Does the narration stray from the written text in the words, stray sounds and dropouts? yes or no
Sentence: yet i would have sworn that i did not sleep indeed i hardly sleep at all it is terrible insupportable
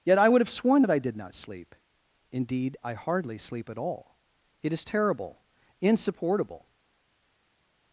no